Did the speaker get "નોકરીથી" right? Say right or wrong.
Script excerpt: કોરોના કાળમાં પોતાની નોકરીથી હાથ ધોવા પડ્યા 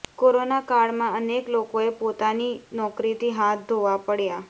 right